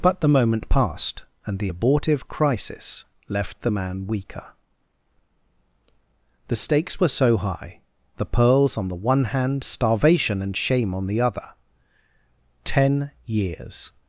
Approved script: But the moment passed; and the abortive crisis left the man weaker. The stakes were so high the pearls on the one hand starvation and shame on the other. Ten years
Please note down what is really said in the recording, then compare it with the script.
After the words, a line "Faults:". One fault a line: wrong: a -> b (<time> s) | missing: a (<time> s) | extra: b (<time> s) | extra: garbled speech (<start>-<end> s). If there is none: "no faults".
But the moment passed; and the abortive crisis left the man weaker. The stakes were so high the pearls on the one hand starvation and shame on the other. Ten years
Faults:
no faults